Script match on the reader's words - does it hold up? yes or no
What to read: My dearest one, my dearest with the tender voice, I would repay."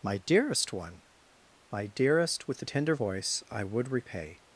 yes